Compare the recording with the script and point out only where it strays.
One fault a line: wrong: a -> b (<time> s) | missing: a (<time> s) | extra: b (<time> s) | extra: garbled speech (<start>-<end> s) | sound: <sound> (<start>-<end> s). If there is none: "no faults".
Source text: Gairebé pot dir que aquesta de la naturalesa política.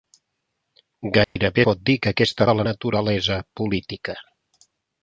sound: dropout (1.2-1.4 s)